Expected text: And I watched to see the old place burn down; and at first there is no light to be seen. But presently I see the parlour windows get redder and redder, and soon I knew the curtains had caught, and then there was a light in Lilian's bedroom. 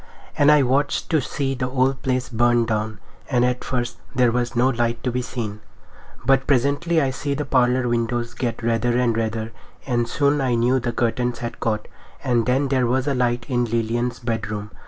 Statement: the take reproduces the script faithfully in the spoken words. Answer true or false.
false